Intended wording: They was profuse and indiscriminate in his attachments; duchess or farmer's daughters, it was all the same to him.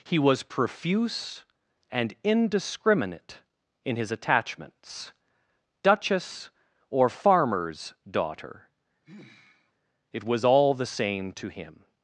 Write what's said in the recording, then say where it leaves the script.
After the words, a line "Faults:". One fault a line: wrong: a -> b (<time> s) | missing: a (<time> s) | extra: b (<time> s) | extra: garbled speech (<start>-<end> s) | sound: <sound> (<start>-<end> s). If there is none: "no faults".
He was profuse and indiscriminate in his attachments; duchess or farmer's daughter, it was all the same to him.
Faults:
wrong: They -> He (0.0 s)
wrong: daughters -> daughter (8.1 s)
sound: sigh (9.0-9.7 s)